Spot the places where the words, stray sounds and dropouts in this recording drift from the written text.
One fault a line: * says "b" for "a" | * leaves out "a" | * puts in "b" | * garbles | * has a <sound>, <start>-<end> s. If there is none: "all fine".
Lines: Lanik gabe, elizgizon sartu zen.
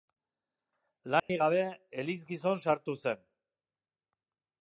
* has a dropout, 1.2-1.3 s